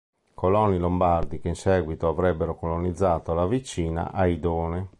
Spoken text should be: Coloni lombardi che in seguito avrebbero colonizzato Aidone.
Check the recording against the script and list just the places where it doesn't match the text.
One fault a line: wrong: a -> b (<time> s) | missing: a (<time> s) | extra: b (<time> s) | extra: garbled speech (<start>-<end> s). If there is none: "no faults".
extra: la vicina (3.3 s)